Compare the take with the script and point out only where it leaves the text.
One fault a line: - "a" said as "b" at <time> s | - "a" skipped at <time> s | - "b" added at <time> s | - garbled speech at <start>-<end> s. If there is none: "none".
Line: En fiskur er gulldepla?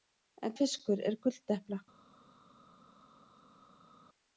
none